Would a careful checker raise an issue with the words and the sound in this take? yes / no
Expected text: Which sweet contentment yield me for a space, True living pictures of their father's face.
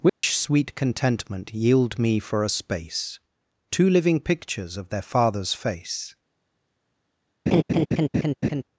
yes